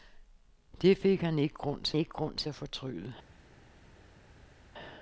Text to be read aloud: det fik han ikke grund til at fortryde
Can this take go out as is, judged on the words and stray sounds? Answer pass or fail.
fail